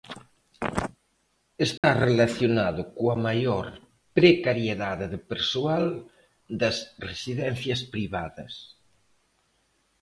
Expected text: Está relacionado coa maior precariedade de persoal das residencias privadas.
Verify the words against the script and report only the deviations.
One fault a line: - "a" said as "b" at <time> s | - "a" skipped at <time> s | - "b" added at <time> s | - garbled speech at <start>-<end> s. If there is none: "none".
none